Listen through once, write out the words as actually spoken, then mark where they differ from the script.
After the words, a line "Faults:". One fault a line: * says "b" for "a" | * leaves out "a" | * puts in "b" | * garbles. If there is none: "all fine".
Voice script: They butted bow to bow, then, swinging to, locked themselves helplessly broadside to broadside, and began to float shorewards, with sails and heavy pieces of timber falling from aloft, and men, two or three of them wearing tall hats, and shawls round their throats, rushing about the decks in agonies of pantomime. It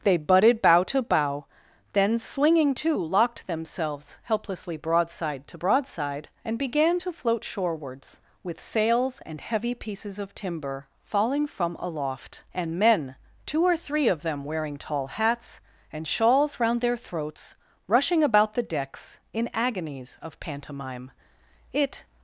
They butted bow to bow, then, swinging to, locked themselves helplessly broadside to broadside, and began to float shorewards, with sails and heavy pieces of timber falling from aloft, and men, two or three of them wearing tall hats, and shawls round their throats, rushing about the decks in agonies of pantomime. It
Faults:
all fine